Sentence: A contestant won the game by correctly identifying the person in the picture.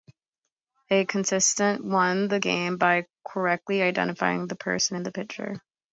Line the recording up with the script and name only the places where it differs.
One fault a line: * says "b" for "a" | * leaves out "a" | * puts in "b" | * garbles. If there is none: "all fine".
all fine